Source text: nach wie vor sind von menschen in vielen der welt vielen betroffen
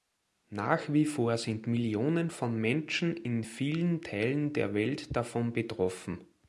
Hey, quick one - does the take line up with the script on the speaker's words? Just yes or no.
no